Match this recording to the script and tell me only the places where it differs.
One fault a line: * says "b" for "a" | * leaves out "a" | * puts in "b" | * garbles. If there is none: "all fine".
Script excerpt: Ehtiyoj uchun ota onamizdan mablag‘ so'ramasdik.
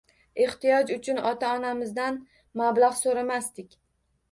all fine